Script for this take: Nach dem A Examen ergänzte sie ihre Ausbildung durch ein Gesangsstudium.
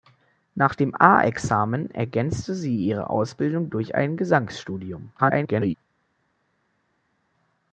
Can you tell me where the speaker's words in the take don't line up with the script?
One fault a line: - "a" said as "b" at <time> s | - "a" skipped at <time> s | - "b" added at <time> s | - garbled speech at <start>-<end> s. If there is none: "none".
- garbled speech at 5.2-5.7 s